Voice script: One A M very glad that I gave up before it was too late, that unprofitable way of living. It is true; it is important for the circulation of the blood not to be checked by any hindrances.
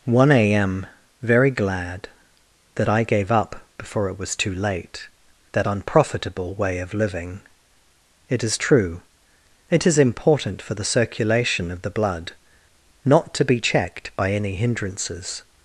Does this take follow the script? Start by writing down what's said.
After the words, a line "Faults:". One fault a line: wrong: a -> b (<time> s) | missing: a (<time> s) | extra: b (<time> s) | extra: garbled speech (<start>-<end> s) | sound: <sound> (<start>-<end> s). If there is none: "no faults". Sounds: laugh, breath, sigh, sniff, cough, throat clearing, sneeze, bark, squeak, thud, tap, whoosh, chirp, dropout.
One A M very glad that I gave up before it was too late, that unprofitable way of living. It is true; it is important for the circulation of the blood not to be checked by any hindrances.
Faults:
no faults